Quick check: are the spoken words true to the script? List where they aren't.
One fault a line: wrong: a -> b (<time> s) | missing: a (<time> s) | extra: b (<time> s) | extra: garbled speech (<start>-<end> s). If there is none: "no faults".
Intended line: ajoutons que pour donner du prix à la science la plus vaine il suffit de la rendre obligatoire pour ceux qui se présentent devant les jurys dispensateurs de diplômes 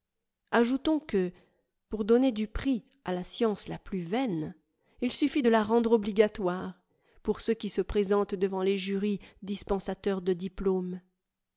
no faults